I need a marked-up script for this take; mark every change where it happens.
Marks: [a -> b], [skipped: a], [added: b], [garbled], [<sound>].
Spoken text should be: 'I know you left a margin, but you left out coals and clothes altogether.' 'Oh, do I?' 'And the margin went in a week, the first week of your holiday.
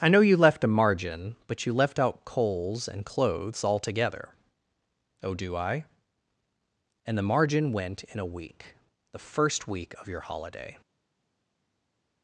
'I know you left a margin, but you left out coals and clothes altogether.' 'Oh, do I?' 'And the margin went in a week, the first week of your holiday.